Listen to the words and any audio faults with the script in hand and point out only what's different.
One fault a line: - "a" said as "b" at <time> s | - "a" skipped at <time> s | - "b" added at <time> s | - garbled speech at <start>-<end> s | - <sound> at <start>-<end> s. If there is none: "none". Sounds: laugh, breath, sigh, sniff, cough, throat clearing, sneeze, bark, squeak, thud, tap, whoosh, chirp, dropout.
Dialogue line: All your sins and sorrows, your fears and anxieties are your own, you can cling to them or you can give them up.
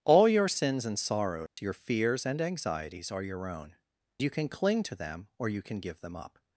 - dropout at 1.5-1.6 s